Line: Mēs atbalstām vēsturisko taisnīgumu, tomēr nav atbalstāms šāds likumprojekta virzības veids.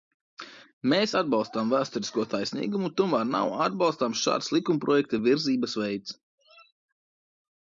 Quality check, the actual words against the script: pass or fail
pass